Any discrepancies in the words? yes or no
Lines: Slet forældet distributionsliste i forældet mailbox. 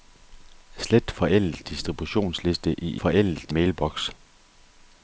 no